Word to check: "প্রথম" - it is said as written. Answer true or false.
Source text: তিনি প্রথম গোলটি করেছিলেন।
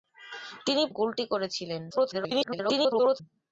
false